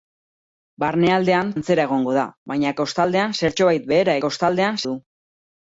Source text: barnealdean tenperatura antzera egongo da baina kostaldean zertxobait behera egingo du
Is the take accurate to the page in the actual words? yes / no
no